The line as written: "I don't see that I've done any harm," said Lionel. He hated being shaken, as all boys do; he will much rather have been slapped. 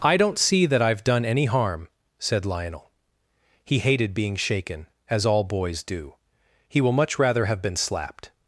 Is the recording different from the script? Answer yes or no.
no